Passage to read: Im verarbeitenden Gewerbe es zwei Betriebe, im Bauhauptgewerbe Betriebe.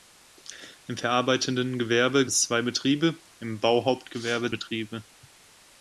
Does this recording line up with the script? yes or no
yes